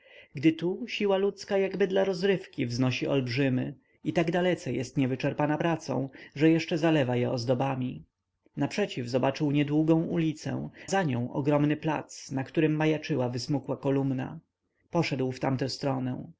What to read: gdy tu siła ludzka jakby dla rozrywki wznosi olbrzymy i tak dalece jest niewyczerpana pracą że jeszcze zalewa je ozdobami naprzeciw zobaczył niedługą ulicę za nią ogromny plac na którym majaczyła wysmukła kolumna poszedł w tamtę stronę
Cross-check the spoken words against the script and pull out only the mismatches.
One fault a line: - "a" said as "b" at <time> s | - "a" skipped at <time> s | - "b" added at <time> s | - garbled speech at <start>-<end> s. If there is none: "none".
none